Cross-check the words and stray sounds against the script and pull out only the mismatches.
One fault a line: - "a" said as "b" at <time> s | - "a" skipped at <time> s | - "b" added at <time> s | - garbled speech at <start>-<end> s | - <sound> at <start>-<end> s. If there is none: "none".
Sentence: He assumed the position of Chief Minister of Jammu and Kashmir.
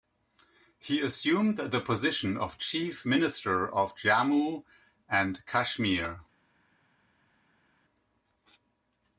none